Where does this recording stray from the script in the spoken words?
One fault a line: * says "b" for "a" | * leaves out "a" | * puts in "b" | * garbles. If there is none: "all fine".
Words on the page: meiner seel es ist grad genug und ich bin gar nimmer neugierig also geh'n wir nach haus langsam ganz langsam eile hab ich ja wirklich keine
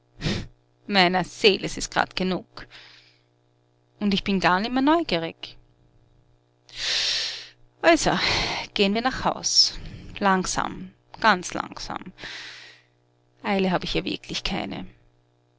all fine